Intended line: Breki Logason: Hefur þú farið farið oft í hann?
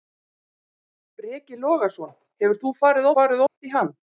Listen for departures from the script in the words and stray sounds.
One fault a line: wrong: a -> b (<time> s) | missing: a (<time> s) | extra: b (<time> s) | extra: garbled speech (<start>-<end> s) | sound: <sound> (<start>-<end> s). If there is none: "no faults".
sound: dropout (3.5-3.6 s)